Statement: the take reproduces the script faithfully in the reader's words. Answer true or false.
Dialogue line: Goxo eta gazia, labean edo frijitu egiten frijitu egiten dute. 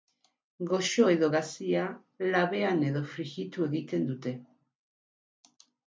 false